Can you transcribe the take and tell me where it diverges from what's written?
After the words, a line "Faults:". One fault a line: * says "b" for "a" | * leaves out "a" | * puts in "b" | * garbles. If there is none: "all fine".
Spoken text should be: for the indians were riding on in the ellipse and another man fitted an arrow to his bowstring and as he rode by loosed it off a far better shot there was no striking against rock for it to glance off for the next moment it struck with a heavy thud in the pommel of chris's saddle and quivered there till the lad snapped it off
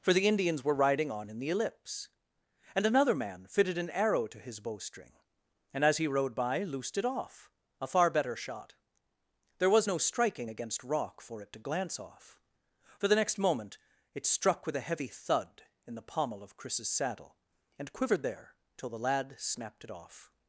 for the indians were riding on in the ellipse and another man fitted an arrow to his bowstring and as he rode by loosed it off a far better shot there was no striking against rock for it to glance off for the next moment it struck with a heavy thud in the pommel of chris's saddle and quivered there till the lad snapped it off
Faults:
all fine